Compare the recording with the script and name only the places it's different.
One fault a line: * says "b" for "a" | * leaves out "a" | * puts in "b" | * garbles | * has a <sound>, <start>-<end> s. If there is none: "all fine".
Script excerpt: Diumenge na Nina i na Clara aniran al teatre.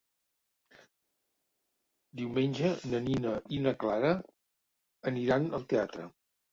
all fine